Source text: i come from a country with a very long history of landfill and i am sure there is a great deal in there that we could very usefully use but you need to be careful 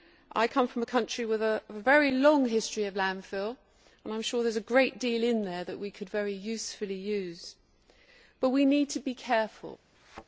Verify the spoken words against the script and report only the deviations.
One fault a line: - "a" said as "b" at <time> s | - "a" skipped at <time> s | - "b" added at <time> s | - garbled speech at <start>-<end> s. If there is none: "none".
- "you" said as "we" at 8.5 s